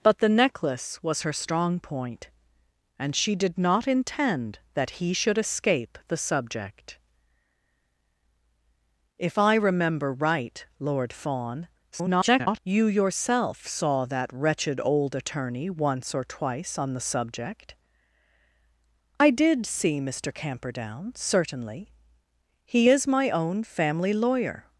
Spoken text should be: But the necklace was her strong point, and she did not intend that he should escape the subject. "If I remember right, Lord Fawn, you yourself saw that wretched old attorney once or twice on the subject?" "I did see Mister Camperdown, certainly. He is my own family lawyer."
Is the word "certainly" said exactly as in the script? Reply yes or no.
yes